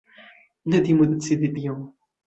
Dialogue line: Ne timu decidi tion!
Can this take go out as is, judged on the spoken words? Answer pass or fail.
pass